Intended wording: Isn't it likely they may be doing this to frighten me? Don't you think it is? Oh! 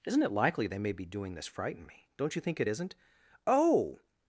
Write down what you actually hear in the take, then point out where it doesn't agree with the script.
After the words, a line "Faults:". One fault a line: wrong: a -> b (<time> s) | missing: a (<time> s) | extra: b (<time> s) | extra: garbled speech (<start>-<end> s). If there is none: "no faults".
Isn't it likely they may be doing this frighten me? Don't you think it isn't? Oh!
Faults:
missing: to (1.5 s)
wrong: is -> isn't (2.7 s)